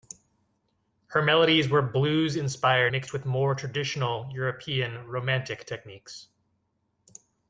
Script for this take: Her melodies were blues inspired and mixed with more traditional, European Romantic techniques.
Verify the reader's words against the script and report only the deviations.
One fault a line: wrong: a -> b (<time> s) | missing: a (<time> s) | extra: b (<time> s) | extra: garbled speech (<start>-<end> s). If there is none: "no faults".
missing: and (2.9 s)